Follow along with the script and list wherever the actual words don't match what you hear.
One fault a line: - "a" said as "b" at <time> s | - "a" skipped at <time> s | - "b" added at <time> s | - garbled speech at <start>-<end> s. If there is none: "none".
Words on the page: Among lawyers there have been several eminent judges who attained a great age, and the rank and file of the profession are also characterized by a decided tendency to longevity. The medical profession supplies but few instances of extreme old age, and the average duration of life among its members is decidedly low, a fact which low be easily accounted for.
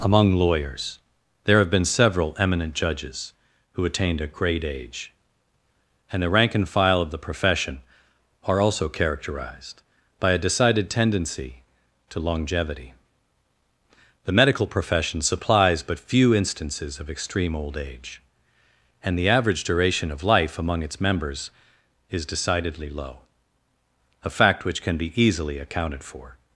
- "low" said as "can" at 24.8 s